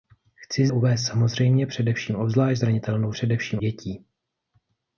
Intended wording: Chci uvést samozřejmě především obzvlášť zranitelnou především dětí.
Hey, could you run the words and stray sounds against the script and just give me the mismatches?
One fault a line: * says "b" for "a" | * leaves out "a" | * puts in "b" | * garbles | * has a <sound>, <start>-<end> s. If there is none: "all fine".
all fine